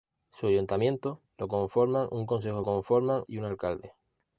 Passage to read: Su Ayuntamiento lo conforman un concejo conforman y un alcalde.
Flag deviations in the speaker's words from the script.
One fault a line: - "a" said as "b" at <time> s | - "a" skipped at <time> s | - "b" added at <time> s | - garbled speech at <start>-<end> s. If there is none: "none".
none